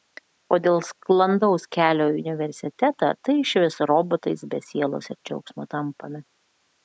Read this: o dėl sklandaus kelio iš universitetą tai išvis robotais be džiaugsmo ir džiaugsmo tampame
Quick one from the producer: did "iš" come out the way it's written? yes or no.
no